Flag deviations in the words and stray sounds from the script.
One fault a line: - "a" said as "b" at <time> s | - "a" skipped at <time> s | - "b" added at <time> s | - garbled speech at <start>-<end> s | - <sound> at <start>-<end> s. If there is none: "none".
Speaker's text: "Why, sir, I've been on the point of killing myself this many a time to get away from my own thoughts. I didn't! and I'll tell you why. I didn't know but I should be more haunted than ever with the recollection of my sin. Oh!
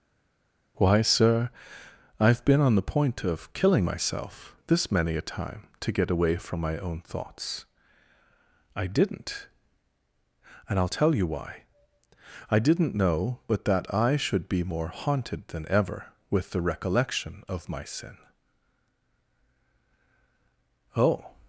- "that" added at 13.7 s